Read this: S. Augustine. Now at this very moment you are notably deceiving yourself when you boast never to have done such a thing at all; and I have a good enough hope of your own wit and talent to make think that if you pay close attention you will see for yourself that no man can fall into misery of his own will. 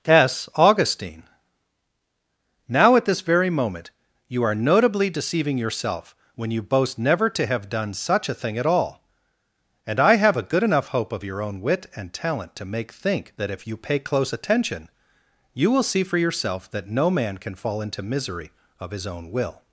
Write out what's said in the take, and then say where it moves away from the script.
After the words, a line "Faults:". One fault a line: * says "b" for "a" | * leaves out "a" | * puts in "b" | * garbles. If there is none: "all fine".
S. Augustine. Now at this very moment you are notably deceiving yourself when you boast never to have done such a thing at all; and I have a good enough hope of your own wit and talent to make think that if you pay close attention you will see for yourself that no man can fall into misery of his own will.
Faults:
all fine